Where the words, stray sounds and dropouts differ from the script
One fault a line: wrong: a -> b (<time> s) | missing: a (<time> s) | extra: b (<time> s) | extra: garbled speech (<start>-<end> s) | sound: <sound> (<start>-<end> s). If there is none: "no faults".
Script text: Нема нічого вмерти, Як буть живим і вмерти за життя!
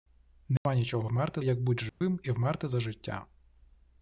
sound: dropout (0.6-0.7 s)
sound: dropout (1.9-2.0 s)